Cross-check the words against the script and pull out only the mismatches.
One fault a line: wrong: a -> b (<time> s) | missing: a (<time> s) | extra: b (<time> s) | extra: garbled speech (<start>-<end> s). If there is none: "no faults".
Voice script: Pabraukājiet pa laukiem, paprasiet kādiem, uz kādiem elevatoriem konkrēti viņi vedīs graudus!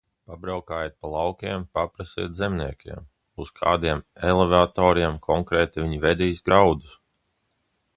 wrong: kādiem -> zemniekiem (2.4 s)